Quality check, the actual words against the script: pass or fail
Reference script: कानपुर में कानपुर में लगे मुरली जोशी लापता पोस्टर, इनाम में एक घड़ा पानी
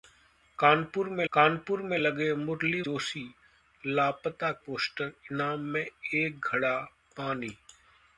pass